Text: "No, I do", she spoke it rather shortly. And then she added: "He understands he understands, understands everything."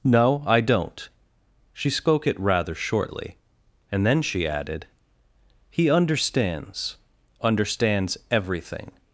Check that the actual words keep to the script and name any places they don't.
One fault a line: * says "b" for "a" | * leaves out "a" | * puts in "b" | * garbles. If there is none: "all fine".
* says "don't" for "do"
* leaves out "he understands"